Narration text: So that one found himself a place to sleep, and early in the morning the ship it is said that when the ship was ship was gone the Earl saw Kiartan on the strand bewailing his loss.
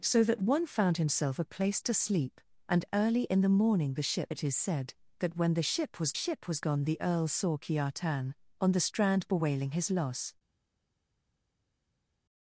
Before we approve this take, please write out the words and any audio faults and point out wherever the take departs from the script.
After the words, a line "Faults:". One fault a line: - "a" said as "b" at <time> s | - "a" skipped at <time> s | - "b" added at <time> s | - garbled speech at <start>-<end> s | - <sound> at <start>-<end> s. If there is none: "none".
So that one found himself a place to sleep, and early in the morning the ship it is said that when the ship was ship was gone the Earl saw Kiartan on the strand bewailing his loss.
Faults:
none